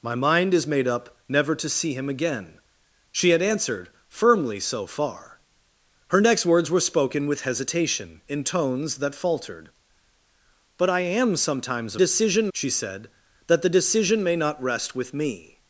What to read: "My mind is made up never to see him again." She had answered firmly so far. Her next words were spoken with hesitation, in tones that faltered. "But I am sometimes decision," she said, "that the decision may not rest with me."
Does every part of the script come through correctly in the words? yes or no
yes